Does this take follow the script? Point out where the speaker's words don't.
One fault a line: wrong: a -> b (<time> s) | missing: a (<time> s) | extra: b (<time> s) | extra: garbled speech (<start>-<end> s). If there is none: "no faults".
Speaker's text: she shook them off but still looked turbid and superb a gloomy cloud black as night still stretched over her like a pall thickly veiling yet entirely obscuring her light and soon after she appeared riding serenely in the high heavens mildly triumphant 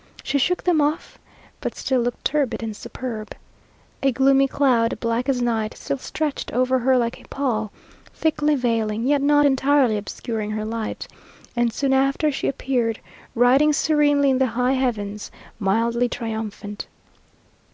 extra: not (9.2 s)